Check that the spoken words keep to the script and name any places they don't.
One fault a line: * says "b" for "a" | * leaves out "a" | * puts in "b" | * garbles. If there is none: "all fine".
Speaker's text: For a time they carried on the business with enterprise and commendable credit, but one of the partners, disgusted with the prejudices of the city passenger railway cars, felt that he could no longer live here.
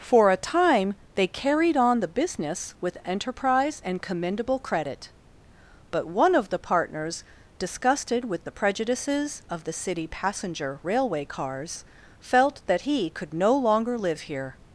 all fine